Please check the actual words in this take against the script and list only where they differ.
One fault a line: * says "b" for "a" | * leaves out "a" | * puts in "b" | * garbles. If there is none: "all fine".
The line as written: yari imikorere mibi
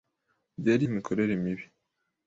all fine